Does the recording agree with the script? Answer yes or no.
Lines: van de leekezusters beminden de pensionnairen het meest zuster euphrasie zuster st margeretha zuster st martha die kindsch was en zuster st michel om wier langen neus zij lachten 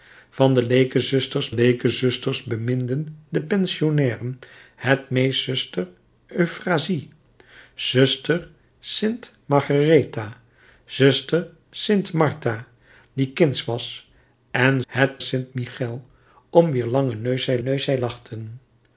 no